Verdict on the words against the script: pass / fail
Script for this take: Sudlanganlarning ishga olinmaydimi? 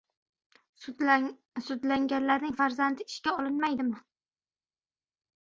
fail